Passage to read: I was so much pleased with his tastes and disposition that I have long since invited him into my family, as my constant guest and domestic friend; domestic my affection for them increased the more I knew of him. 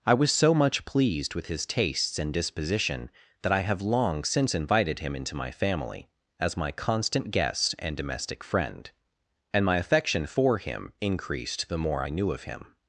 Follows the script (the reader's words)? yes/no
no